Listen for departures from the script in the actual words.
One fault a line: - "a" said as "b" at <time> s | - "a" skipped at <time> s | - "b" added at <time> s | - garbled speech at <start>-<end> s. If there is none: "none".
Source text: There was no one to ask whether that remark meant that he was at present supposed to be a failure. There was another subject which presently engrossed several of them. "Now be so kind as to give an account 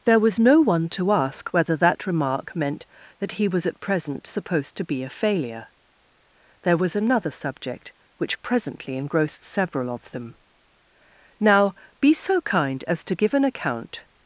none